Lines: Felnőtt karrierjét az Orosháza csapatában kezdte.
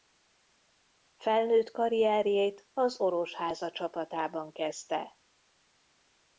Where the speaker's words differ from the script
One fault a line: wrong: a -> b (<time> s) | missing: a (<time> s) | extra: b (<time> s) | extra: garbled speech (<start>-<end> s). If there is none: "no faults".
no faults